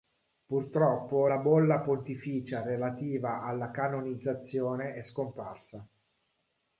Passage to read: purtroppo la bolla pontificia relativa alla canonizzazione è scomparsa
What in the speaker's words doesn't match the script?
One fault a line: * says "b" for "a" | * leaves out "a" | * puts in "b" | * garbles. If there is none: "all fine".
all fine